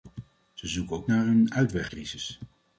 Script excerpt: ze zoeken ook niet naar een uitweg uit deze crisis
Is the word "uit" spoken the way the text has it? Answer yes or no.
no